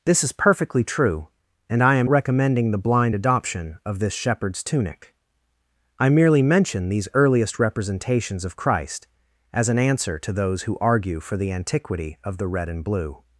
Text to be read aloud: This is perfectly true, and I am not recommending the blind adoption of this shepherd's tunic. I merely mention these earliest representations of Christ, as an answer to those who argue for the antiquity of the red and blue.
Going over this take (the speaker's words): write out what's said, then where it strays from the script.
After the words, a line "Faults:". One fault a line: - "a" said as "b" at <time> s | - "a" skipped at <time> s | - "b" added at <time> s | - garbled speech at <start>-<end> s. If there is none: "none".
This is perfectly true, and I am recommending the blind adoption of this shepherd's tunic. I merely mention these earliest representations of Christ, as an answer to those who argue for the antiquity of the red and blue.
Faults:
- "not" skipped at 2.1 s